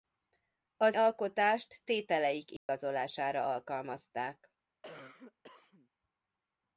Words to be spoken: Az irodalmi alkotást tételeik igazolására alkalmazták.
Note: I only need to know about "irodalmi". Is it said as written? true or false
false